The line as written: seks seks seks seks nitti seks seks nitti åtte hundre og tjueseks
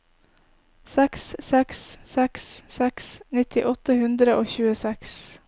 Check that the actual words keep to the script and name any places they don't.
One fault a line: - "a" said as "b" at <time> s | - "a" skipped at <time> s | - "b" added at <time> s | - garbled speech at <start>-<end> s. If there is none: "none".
- "seks seks nitti" skipped at 3.7 s